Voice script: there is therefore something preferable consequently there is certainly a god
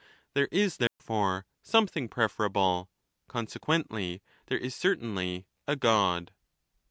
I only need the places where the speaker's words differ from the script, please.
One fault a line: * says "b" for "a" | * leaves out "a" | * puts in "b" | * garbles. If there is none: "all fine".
all fine